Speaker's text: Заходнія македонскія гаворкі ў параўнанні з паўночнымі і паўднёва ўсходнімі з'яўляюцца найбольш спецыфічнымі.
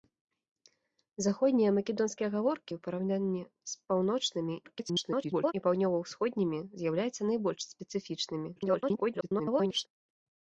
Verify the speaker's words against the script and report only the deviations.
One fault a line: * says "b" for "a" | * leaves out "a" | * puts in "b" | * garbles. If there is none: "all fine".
* garbles
* garbles